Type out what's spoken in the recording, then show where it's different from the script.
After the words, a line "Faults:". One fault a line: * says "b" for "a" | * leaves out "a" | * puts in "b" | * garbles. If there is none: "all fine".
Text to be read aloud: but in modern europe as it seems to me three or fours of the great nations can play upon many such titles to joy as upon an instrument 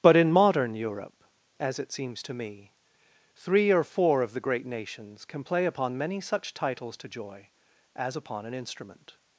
but in modern europe as it seems to me three or four of the great nations can play upon many such titles to joy as upon an instrument
Faults:
* says "four" for "fours"